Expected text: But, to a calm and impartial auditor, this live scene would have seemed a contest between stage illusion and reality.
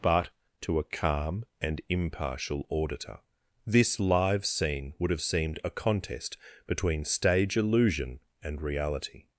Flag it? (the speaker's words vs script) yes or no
no